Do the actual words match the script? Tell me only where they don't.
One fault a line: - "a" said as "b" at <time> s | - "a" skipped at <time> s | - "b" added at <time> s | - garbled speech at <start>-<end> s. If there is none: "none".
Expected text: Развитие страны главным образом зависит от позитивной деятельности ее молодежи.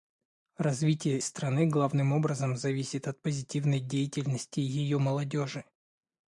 none